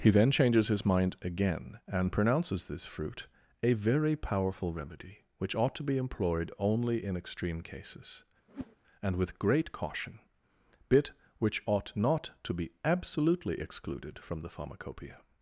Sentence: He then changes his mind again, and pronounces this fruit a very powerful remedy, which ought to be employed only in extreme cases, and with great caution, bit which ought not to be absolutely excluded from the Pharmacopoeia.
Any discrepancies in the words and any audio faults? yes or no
yes